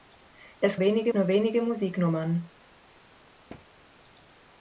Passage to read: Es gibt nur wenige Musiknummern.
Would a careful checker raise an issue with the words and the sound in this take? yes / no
yes